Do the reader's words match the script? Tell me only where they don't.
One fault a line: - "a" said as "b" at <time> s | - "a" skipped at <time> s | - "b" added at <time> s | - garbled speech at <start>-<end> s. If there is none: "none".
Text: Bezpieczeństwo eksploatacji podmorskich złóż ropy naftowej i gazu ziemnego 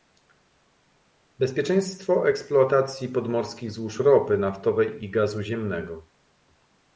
none